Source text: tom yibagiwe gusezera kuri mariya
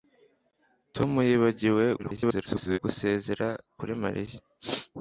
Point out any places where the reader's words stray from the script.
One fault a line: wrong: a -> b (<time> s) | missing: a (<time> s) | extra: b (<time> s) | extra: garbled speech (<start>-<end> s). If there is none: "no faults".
extra: garbled speech (2.0-2.8 s)